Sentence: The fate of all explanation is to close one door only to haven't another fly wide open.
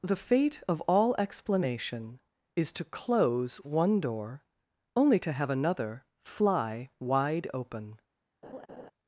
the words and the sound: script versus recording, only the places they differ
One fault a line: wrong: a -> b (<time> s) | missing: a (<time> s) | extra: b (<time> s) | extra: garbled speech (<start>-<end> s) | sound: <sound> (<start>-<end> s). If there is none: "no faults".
wrong: haven't -> have (5.3 s)
sound: laugh (8.4-8.9 s)